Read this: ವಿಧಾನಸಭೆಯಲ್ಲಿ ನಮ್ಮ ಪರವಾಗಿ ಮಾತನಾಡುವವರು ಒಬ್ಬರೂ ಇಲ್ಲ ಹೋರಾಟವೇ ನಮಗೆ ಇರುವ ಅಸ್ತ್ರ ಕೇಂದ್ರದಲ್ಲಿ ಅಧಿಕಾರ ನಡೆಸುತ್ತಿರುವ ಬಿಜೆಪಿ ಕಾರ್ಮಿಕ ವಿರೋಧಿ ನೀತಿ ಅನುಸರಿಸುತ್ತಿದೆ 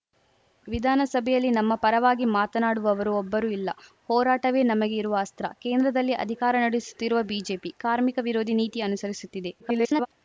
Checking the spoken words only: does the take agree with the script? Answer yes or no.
no